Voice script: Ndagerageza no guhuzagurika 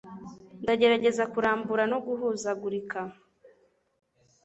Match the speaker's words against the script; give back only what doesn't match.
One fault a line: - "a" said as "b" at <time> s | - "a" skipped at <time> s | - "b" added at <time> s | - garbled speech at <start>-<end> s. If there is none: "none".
- "kurambura" added at 1.3 s